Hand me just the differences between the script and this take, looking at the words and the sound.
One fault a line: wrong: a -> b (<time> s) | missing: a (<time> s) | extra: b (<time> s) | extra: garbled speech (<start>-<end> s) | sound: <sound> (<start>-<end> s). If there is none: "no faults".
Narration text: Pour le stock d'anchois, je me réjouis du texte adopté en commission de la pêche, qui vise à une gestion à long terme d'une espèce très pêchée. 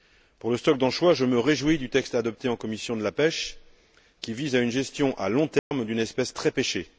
sound: dropout (5.6-5.7 s)